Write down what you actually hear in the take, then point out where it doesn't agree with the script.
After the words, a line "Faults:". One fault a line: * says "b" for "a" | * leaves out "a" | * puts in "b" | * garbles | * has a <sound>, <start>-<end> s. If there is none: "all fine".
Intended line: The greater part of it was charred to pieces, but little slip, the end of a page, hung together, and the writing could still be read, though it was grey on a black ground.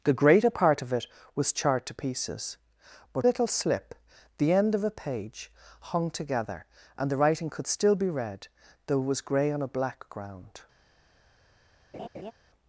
The greater part of it was charred to pieces, but little slip, the end of a page, hung together, and the writing could still be read, though it was grey on a black ground.
Faults:
* has a laugh, 11.9-12.3 s